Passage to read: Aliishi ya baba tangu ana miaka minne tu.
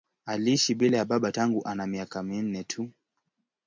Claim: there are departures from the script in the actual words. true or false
true